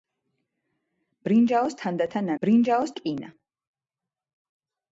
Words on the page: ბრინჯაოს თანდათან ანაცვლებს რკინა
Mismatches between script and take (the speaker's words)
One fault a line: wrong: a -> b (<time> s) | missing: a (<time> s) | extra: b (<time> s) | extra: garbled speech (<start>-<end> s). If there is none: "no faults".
wrong: ანაცვლებს -> ბრინჯაოს (2.4 s)